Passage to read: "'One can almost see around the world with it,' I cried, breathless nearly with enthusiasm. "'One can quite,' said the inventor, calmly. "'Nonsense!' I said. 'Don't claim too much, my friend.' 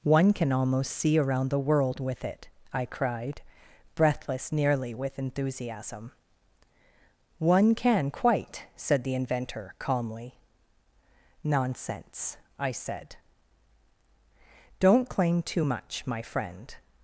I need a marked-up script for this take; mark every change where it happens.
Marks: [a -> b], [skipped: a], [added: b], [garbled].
"'One can almost see around the world with it,' I cried, breathless nearly with enthusiasm. "'One can quite,' said the inventor, calmly. "'Nonsense!' I said. 'Don't claim too much, my friend.'